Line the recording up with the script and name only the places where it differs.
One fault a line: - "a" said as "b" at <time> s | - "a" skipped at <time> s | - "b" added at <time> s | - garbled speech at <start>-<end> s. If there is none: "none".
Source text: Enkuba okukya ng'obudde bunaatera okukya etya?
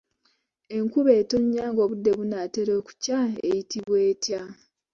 - "okukya" said as "etonnya" at 1.2 s
- "eyitibwa" added at 3.5 s